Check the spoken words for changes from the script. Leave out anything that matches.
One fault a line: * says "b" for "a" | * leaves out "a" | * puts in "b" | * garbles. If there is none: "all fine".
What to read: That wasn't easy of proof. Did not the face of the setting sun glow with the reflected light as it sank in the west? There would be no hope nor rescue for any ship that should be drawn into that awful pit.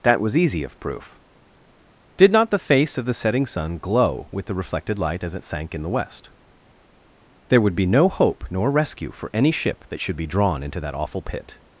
* says "was" for "wasn't"